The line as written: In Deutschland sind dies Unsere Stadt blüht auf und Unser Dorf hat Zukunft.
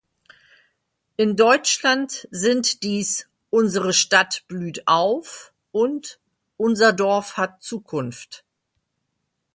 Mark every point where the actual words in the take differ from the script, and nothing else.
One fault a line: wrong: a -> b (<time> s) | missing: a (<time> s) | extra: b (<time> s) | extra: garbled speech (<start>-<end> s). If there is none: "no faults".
no faults